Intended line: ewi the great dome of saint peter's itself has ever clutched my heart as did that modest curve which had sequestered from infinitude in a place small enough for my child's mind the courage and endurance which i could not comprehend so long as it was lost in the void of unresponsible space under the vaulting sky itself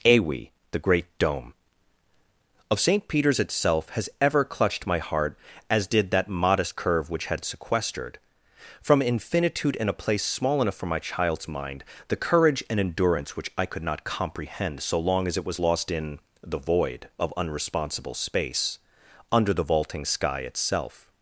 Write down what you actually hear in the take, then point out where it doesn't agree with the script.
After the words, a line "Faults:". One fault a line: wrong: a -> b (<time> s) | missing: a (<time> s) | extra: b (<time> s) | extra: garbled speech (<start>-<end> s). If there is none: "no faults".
ewi the great dome of saint peter's itself has ever clutched my heart as did that modest curve which had sequestered from infinitude in a place small enough for my child's mind the courage and endurance which i could not comprehend so long as it was lost in the void of unresponsible space under the vaulting sky itself
Faults:
no faults